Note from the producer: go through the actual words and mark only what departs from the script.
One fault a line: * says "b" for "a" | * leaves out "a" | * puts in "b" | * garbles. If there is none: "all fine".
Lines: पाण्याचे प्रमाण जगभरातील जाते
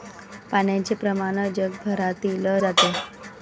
all fine